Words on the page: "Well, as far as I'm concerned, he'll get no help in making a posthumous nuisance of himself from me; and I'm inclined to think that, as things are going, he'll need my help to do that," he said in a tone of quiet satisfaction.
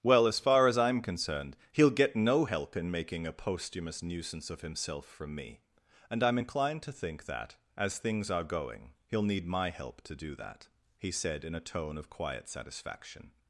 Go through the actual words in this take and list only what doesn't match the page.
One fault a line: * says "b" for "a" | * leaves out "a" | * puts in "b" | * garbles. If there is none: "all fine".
all fine